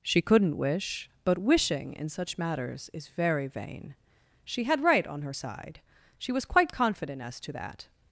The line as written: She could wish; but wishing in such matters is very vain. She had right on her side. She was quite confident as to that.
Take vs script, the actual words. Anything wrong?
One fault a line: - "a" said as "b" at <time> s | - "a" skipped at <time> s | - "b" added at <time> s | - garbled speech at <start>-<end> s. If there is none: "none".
- "could" said as "couldn't" at 0.2 s